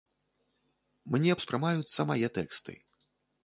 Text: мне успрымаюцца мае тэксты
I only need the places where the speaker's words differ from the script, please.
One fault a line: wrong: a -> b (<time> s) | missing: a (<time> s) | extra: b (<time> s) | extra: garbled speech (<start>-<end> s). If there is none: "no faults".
no faults